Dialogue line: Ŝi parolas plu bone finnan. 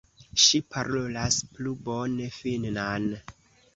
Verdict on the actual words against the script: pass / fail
pass